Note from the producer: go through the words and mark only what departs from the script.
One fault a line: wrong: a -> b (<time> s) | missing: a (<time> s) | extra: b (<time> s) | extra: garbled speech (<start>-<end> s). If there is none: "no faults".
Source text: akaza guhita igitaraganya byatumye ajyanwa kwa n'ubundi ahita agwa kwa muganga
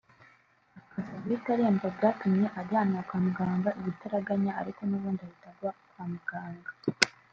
wrong: igitaraganya -> aremba (1.6 s)
extra: muganga igitaraganya ariko (3.2 s)